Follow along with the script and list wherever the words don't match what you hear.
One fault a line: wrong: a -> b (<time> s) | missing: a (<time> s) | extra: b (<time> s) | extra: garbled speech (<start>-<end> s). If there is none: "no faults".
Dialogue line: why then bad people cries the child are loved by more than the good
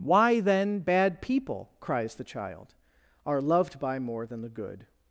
no faults